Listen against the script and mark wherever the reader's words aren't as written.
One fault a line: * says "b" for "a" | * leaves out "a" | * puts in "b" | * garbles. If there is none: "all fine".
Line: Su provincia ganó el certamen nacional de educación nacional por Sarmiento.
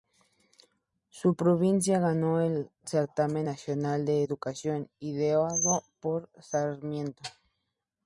* says "ideado" for "nacional"